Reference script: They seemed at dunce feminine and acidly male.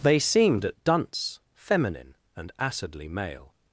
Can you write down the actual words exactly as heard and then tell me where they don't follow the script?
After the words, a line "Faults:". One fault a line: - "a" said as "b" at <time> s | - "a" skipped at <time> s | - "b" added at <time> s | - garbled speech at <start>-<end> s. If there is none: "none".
They seemed at dunce feminine and acidly male.
Faults:
none